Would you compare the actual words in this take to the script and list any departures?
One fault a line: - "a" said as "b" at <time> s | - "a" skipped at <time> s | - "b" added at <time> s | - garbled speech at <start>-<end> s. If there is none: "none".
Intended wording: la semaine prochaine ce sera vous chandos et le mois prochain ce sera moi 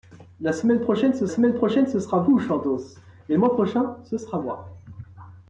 - "semaine prochaine ce" added at 1.3 s